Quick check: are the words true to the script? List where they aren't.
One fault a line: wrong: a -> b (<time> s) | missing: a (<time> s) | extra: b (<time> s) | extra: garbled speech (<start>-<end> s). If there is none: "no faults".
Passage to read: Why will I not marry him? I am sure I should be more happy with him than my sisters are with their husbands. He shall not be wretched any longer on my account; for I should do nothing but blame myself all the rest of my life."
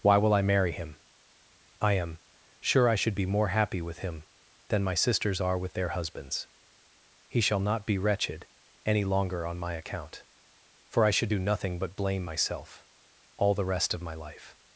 missing: not (0.4 s)